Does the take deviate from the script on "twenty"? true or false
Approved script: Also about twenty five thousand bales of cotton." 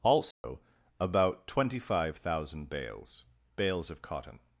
false